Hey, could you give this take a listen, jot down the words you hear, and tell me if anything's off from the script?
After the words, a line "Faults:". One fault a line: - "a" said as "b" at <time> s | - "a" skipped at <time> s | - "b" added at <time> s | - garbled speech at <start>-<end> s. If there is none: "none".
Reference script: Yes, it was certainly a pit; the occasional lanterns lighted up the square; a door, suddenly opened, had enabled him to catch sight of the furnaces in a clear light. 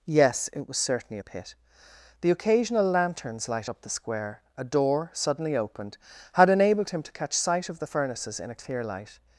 Yes, it was certainly a pit; the occasional lanterns light up the square; a door, suddenly opened, had enabled him to catch sight of the furnaces in a clear light.
Faults:
- "lighted" said as "light" at 3.5 s